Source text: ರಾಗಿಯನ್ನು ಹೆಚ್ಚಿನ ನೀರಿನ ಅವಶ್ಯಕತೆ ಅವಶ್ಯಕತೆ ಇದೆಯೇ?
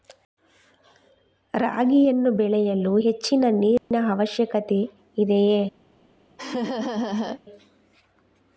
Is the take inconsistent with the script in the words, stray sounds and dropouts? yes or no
yes